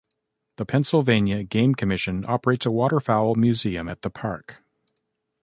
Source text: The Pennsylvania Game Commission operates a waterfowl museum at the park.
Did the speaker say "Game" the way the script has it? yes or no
yes